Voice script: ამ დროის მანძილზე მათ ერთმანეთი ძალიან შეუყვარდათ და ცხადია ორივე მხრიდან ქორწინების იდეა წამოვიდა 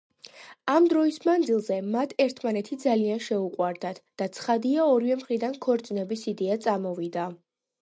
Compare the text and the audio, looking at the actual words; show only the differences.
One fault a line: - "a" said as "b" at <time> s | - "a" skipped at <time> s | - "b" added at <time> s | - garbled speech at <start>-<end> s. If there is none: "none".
none